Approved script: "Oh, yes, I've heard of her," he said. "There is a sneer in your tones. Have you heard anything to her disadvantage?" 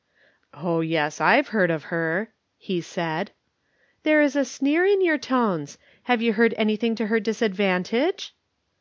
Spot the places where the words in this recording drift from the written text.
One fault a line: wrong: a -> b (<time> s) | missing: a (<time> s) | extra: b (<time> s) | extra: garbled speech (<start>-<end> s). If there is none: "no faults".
no faults